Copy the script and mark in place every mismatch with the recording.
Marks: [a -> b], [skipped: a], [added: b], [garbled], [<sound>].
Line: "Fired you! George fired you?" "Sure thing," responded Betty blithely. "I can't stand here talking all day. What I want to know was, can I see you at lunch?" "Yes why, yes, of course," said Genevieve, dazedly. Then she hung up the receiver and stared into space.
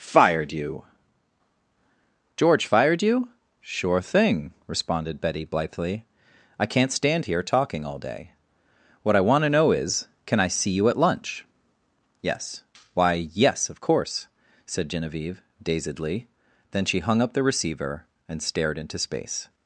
"Fired you! George fired you?" "Sure thing," responded Betty blithely. "I can't stand here talking all day. What I want to know [was, -> is] can I see you at lunch?" "Yes why, yes, of course," said Genevieve, dazedly. Then she hung up the receiver and stared into space.